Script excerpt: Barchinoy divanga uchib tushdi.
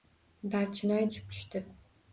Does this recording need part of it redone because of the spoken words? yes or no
yes